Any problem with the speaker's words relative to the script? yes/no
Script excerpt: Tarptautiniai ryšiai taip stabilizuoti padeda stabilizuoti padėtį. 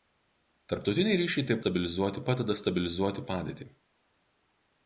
no